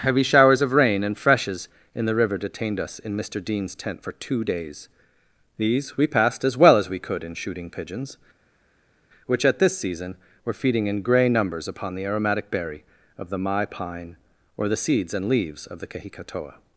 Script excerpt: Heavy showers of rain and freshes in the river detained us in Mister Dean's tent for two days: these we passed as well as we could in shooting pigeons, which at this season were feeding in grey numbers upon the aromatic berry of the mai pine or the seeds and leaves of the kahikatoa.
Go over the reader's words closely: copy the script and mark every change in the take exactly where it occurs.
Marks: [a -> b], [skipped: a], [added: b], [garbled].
Heavy showers of rain and freshes in the river detained us in Mister Dean's tent for two days: these we passed as well as we could in shooting pigeons, which at this season were feeding in grey numbers upon the aromatic berry of the mai pine or the seeds and leaves of the kahikatoa.